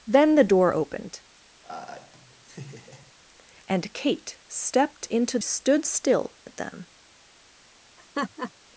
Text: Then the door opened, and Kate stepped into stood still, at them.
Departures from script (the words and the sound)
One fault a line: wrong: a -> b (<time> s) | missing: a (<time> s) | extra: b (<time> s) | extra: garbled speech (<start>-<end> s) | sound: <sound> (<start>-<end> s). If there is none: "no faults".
sound: laugh (1.6-3.1 s)
sound: laugh (8.0-8.5 s)